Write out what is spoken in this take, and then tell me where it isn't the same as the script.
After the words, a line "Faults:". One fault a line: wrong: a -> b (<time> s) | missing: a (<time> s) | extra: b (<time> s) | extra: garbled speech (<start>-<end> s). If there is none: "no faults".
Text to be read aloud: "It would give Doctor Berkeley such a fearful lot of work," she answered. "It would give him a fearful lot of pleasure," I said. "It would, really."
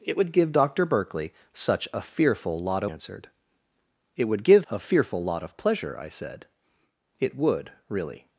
"It would give Doctor Berkeley such a fearful lot answered. "It would give a fearful lot of pleasure," I said. "It would, really."
Faults:
missing: of work she (2.9 s)
missing: him (4.7 s)